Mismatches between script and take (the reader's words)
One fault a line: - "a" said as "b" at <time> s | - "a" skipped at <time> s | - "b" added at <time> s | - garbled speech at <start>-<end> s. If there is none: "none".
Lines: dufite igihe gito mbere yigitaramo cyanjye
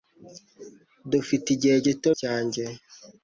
- "mbere yigitaramo" skipped at 2.1 s